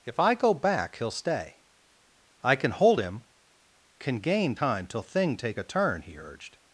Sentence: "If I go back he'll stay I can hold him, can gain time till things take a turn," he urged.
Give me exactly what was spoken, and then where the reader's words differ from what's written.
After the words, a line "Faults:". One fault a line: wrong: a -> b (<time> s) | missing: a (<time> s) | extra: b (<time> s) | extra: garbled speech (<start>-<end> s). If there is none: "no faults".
"If I go back he'll stay I can hold him, can gain time till thing take a turn," he urged.
Faults:
wrong: things -> thing (5.0 s)